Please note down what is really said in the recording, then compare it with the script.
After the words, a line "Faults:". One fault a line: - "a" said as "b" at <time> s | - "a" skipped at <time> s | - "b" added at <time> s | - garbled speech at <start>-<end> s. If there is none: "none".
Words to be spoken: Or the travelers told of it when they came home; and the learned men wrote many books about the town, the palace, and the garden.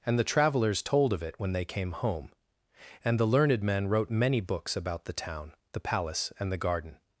And the travelers told of it when they came home; and the learned men wrote many books about the town, the palace, and the garden.
Faults:
- "Or" said as "And" at 0.1 s